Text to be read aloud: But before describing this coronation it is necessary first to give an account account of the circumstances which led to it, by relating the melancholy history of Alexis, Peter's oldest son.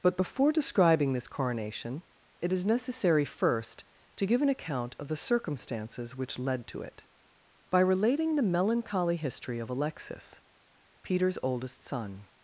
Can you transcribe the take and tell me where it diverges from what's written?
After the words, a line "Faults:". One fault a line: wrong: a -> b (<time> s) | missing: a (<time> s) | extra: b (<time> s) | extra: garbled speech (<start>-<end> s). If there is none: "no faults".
But before describing this coronation it is necessary first to give an account of the circumstances which led to it, by relating the melancholy history of Alexis, Peter's oldest son.
Faults:
missing: account (5.0 s)